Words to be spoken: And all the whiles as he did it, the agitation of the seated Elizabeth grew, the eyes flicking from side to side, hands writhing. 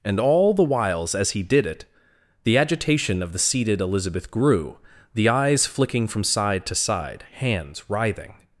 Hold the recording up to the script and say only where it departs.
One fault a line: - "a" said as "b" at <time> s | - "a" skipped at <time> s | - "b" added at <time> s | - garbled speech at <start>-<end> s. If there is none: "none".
none